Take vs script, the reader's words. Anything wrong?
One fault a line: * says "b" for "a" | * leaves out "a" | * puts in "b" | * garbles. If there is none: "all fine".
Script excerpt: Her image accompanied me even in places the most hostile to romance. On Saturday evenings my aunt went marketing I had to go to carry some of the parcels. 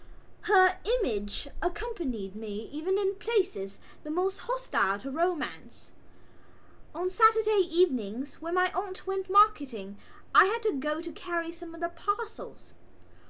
* puts in "when"